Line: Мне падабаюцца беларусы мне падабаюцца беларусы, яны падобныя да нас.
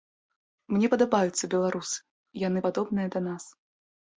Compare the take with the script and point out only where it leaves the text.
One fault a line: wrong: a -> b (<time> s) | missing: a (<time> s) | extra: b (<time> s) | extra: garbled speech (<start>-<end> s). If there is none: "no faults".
missing: мне падабаюцца беларусы (2.0 s)